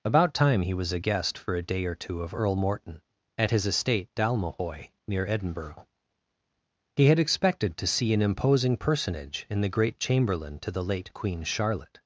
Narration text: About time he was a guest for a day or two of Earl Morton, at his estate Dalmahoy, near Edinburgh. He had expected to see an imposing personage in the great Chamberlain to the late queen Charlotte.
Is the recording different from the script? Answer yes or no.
no